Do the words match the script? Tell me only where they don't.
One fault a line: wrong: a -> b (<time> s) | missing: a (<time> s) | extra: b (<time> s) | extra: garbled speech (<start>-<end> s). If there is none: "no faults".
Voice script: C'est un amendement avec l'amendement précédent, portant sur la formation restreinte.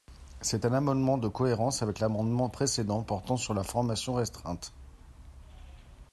extra: de cohérence (1.2 s)